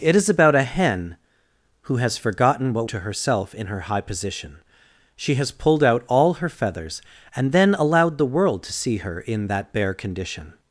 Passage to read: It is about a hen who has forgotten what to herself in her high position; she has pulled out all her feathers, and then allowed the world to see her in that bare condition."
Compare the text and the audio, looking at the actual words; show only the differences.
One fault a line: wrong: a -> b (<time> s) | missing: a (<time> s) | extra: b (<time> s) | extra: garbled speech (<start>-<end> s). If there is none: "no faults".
no faults